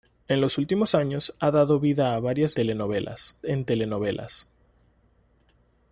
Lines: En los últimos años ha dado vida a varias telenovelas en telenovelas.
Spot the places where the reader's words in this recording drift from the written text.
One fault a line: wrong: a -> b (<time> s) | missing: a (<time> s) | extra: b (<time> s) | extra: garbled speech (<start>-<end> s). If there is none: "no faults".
no faults